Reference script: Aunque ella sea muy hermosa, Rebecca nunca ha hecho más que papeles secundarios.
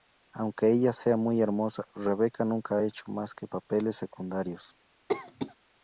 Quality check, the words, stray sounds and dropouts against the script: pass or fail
fail